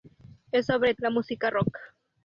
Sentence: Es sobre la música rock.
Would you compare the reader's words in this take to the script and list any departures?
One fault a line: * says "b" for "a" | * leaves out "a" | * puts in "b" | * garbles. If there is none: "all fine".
all fine